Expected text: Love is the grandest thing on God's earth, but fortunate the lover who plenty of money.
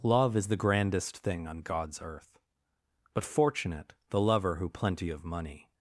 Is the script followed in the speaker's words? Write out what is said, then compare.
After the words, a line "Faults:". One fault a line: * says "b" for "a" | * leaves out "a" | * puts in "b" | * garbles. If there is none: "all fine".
Love is the grandest thing on God's earth, but fortunate the lover who plenty of money.
Faults:
all fine